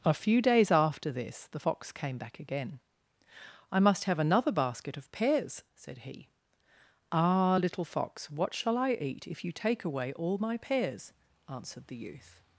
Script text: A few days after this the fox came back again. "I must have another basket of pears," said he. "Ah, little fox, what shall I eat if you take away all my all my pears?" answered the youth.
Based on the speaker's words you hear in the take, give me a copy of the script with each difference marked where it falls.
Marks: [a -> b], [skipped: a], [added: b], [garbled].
A few days after this the fox came back again. "I must have another basket of pears," said he. "Ah, little fox, what shall I eat if you take away all my [skipped: all my] pears?" answered the youth.